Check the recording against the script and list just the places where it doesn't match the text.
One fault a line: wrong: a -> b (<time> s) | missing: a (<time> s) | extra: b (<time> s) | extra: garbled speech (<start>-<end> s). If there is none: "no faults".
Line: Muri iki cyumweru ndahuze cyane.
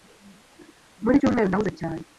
missing: iki (1.1 s)